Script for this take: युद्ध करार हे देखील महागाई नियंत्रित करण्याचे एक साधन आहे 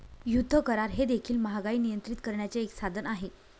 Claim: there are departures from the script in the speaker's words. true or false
false